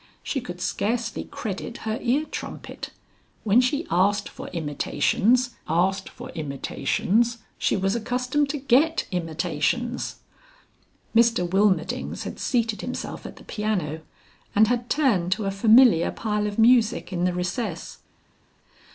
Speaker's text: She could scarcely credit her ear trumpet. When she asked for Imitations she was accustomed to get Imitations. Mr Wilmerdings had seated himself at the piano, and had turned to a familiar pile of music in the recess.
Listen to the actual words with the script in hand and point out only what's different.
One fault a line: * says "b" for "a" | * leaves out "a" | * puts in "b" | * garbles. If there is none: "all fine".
* puts in "asked for Imitations"